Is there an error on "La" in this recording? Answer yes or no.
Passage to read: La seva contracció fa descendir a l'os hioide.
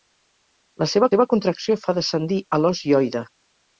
no